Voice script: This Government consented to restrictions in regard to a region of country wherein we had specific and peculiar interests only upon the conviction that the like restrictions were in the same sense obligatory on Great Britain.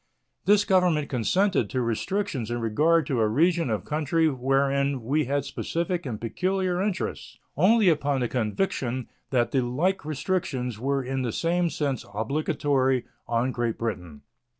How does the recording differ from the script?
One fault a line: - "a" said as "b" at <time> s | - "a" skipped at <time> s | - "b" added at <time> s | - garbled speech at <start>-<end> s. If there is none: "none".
none